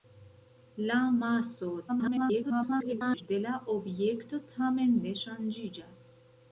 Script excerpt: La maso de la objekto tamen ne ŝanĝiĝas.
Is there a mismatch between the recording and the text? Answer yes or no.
yes